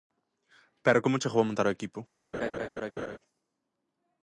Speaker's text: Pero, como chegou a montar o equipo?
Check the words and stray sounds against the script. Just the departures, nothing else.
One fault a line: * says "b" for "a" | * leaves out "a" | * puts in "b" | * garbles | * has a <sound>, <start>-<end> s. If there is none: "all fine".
* has a laugh, 2.3-3.2 s